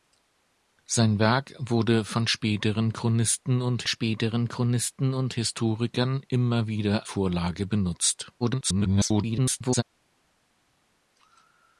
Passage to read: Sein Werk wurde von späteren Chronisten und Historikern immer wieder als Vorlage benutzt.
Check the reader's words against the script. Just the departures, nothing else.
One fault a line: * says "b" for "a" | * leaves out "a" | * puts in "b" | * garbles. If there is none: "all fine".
* puts in "späteren Chronisten und"
* leaves out "als"
* garbles